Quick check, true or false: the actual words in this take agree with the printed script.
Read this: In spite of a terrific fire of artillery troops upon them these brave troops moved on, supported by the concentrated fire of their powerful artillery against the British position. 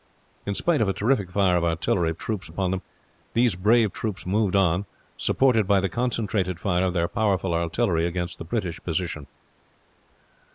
true